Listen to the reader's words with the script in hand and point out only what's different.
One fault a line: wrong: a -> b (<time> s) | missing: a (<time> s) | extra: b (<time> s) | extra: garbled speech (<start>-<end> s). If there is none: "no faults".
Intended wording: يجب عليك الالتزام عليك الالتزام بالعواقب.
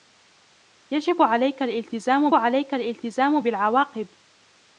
no faults